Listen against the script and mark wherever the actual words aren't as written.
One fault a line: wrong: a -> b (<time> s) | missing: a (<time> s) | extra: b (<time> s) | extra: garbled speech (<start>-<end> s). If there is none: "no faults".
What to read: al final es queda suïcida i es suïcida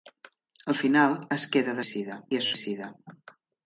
no faults